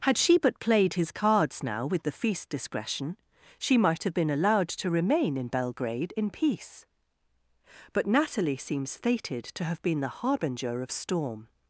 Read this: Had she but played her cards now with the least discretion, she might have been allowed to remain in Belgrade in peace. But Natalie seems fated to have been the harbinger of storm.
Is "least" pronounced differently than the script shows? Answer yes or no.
yes